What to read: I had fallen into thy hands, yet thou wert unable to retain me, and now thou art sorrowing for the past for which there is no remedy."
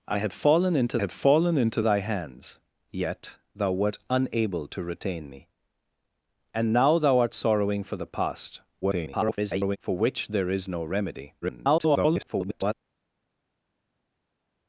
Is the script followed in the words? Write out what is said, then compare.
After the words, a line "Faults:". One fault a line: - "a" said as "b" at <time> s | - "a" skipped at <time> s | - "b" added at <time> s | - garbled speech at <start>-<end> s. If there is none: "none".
I had fallen into had fallen into thy hands, yet thou wert unable to retain me, and now thou art sorrowing for the past [garbled] for which there is no remedy." [garbled]
Faults:
- "had fallen into" added at 1.0 s
- garbled speech at 8.8-9.8 s
- garbled speech at 11.4-12.7 s